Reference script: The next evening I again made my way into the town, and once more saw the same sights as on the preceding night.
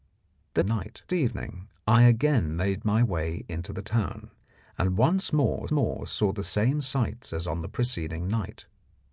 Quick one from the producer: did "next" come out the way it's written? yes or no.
no